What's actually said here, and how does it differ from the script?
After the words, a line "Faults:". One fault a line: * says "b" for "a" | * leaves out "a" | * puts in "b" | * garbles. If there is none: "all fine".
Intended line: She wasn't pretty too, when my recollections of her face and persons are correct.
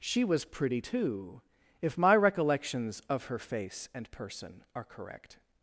She was pretty too, if my recollections of her face and person are correct.
Faults:
* says "was" for "wasn't"
* says "if" for "when"
* says "person" for "persons"